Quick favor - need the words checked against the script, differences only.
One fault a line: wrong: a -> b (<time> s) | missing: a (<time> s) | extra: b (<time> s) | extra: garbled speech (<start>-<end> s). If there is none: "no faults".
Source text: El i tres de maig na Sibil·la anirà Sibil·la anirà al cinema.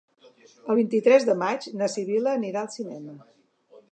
extra: vint (0.8 s)
missing: Sibil·la anirà (2.6 s)